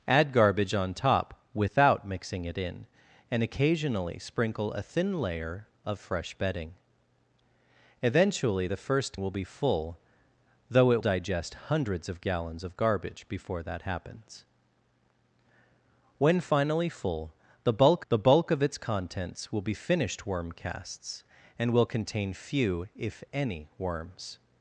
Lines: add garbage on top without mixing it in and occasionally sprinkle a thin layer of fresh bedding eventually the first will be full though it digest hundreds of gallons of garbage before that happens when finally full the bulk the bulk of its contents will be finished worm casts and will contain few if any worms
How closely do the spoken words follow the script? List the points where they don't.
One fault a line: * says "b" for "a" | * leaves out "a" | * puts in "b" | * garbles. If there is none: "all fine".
all fine